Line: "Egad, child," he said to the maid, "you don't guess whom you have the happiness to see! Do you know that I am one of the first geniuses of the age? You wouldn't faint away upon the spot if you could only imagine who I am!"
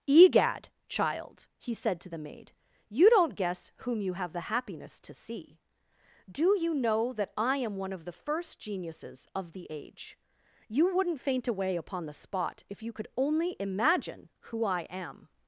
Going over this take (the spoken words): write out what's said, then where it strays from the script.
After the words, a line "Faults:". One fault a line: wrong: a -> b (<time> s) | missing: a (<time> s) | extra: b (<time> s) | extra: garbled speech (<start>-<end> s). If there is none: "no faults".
"Egad, child," he said to the maid, "you don't guess whom you have the happiness to see! Do you know that I am one of the first geniuses of the age? You wouldn't faint away upon the spot if you could only imagine who I am!"
Faults:
no faults